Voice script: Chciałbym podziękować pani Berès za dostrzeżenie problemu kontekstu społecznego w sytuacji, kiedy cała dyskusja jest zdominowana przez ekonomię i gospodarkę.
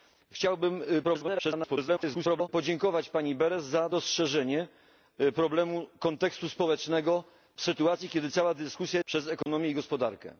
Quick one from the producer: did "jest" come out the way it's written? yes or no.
no